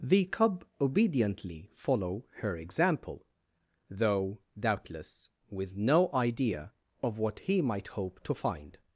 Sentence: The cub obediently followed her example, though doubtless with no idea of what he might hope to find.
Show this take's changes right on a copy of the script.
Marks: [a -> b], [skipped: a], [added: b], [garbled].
The cub obediently [followed -> follow] her example, though doubtless with no idea of what he might hope to find.